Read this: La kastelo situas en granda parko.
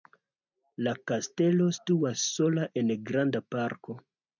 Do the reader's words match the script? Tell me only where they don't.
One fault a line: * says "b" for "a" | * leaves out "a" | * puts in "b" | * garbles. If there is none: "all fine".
* puts in "sola"